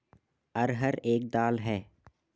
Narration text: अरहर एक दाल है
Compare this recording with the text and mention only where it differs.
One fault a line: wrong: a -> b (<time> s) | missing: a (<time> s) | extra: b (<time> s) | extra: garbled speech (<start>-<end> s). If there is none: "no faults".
no faults